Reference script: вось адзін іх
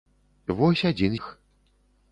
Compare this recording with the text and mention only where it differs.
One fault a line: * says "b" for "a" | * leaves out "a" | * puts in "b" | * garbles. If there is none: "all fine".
all fine